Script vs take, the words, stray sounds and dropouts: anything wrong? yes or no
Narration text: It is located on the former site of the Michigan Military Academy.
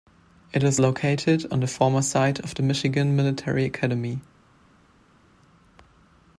no